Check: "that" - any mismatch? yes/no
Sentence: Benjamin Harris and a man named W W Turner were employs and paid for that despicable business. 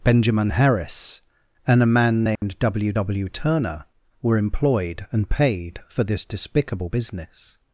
yes